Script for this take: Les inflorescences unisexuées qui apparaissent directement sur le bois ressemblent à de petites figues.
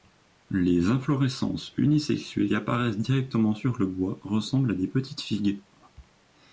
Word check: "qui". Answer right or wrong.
wrong